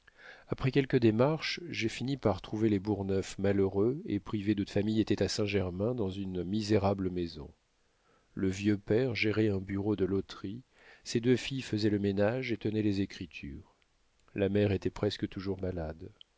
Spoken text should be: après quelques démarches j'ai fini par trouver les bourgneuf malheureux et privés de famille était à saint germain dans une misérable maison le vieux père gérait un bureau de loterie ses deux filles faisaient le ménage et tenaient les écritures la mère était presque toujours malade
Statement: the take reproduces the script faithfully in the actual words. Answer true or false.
true